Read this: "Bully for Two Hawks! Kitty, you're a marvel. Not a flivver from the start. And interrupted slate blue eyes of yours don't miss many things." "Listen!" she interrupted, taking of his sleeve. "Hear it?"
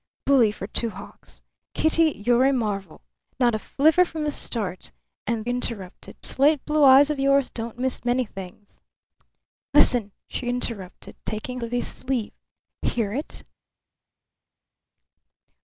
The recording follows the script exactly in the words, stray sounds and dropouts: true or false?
true